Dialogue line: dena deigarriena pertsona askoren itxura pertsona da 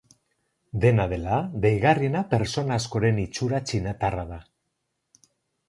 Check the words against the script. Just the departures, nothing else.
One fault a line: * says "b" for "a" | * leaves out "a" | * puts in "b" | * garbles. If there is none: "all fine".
* puts in "dela"
* says "txinatarra" for "pertsona"